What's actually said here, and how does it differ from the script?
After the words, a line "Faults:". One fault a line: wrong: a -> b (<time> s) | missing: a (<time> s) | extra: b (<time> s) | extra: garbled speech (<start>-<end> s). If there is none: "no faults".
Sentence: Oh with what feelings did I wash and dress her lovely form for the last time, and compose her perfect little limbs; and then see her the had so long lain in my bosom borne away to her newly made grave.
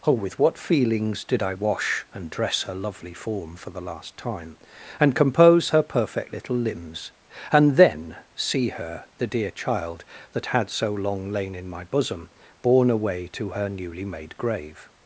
Oh with what feelings did I wash and dress her lovely form for the last time, and compose her perfect little limbs; and then see her the dear child that had so long lain in my bosom borne away to her newly made grave.
Faults:
extra: dear child that (9.2 s)